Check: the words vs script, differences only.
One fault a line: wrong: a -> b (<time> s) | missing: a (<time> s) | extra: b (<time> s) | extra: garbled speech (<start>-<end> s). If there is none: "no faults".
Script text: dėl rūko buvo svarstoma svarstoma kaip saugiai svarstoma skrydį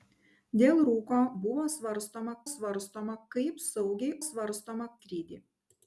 no faults